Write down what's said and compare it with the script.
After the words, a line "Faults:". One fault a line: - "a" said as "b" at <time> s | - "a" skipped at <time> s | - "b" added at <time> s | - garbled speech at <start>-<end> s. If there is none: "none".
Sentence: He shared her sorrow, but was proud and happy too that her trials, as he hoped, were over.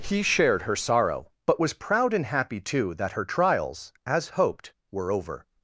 He shared her sorrow, but was proud and happy too that her trials, as hoped, were over.
Faults:
- "he" skipped at 4.3 s